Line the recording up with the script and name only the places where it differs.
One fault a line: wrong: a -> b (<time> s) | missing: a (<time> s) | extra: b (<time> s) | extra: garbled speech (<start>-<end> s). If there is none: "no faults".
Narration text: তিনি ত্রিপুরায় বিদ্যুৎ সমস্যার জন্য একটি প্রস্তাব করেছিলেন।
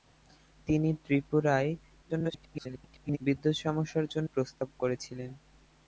extra: garbled speech (2.0-3.2 s)
missing: একটি (4.3 s)